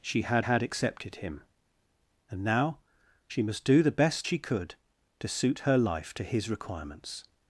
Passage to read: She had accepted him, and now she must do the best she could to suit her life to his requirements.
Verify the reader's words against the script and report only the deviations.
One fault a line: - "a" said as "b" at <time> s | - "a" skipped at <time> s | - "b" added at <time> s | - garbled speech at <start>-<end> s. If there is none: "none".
- "had" added at 0.4 s